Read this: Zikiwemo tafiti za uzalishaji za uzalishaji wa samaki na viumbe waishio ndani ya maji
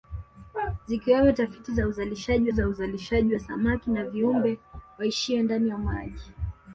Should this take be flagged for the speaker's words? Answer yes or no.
no